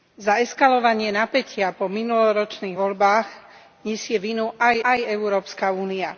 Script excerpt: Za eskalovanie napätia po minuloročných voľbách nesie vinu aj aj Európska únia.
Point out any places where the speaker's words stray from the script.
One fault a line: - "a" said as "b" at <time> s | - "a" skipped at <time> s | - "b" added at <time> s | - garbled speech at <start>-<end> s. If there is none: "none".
none